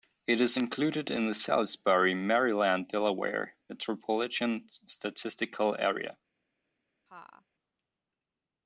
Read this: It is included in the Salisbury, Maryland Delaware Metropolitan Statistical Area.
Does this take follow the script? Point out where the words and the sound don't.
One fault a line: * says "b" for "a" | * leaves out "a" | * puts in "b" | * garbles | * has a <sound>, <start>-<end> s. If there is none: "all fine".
* has a laugh, 7.1-7.5 s